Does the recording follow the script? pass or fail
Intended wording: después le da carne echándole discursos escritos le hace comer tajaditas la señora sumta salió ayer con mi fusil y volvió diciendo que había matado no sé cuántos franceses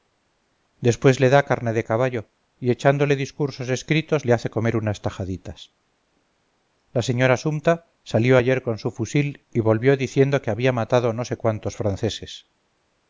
fail